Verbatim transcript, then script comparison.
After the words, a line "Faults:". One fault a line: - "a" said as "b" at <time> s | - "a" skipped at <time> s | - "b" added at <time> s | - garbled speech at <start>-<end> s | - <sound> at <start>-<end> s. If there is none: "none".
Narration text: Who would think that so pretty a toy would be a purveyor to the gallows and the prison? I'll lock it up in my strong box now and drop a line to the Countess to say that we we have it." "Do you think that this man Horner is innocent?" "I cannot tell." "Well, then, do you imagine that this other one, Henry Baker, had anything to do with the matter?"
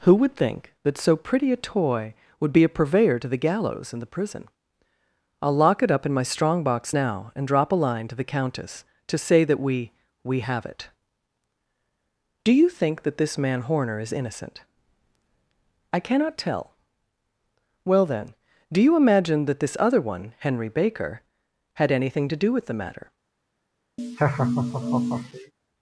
Who would think that so pretty a toy would be a purveyor to the gallows and the prison? I'll lock it up in my strong box now and drop a line to the Countess to say that we we have it." "Do you think that this man Horner is innocent?" "I cannot tell." "Well, then, do you imagine that this other one, Henry Baker, had anything to do with the matter?"
Faults:
- laugh at 24.0-25.5 s